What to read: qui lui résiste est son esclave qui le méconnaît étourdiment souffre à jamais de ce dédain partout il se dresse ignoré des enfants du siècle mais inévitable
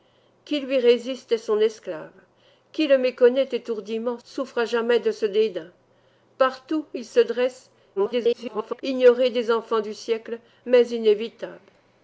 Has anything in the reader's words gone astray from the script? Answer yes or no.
yes